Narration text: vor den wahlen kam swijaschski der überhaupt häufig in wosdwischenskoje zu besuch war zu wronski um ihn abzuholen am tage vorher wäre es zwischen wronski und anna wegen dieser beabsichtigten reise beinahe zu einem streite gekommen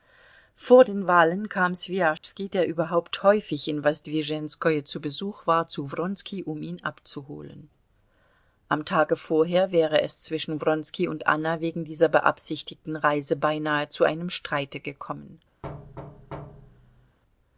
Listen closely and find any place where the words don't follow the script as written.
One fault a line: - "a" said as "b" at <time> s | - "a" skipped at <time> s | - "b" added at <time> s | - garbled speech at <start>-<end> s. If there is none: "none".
none